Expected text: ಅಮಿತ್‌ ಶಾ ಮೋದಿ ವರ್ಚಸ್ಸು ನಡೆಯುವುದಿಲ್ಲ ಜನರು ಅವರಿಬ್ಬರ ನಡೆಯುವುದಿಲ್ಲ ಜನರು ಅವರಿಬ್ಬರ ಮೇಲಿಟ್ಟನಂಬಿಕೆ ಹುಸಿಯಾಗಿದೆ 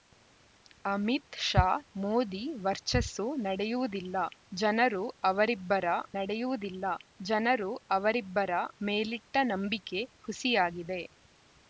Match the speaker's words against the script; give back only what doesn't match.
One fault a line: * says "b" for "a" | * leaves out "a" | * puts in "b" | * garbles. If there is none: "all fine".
all fine